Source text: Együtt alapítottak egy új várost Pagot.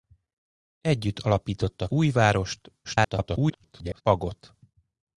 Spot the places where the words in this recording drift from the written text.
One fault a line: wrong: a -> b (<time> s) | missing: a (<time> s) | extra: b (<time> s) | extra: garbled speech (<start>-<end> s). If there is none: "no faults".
missing: egy (1.9 s)
extra: garbled speech (2.8-4.0 s)